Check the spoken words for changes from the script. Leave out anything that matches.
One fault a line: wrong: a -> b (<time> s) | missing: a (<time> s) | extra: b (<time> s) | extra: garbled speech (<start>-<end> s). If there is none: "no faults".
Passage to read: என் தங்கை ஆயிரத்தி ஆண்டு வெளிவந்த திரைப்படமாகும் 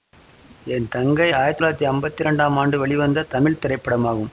extra: தொள்ளாயிரத்தி அம்பத்தி இரண்டாம் (1.6 s)
extra: தமிழ் (3.3 s)